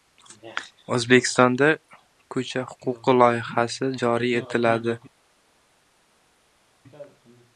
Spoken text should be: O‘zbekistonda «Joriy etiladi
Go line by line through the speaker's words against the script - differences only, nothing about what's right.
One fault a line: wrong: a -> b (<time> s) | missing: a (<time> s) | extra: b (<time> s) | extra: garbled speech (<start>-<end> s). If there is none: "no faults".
extra: Ko‘cha huquqi loyihasi (2.4 s)